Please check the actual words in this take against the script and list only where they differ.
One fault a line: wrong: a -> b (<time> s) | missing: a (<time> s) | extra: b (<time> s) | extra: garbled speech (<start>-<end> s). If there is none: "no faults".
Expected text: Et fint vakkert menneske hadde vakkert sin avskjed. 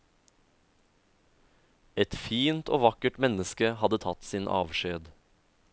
extra: og (2.7 s)
wrong: vakkert -> tatt (4.1 s)